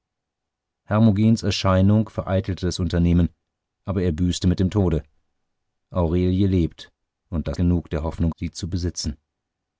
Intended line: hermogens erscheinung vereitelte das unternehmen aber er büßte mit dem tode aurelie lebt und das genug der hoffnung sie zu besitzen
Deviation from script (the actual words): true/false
false